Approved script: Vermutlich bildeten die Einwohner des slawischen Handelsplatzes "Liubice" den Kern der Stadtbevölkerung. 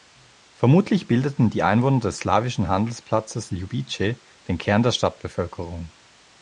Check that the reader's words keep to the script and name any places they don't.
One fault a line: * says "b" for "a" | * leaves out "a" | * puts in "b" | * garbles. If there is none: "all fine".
all fine